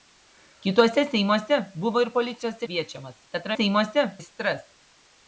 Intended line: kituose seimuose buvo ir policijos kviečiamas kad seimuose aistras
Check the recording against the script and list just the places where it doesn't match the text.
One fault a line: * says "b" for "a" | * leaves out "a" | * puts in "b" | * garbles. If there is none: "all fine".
all fine